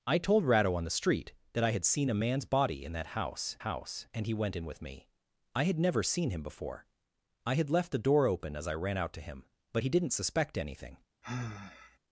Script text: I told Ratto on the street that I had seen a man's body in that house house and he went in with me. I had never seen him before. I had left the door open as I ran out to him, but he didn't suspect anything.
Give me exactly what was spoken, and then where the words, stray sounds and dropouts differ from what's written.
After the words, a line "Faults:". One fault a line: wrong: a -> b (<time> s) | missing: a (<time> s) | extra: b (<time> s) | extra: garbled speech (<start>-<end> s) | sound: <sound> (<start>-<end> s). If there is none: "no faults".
I told Ratto on the street that I had seen a man's body in that house house and he went in with me. I had never seen him before. I had left the door open as I ran out to him, but he didn't suspect anything.
Faults:
sound: sigh (11.2-12.0 s)